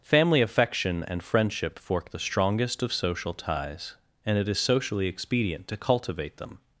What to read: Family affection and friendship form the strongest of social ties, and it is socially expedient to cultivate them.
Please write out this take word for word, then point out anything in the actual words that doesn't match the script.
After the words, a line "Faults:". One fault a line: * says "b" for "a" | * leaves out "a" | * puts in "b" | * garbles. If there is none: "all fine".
Family affection and friendship fork the strongest of social ties, and it is socially expedient to cultivate them.
Faults:
* says "fork" for "form"